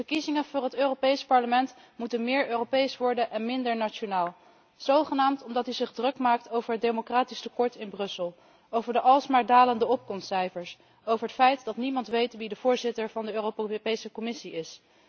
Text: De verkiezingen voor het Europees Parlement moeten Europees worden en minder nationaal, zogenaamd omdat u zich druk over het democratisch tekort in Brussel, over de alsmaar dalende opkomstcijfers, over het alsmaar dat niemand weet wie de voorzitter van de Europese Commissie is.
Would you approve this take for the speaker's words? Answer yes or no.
no